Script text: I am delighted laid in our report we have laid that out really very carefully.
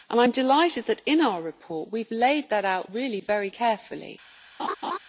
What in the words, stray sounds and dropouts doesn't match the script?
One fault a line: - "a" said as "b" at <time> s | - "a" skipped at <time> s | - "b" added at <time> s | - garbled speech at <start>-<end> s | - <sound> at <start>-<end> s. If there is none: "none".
- "laid" said as "that" at 0.9 s
- laugh at 4.6-5.0 s